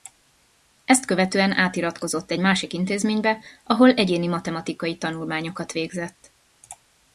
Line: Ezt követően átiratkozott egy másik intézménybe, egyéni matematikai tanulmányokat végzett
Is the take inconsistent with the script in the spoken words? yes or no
yes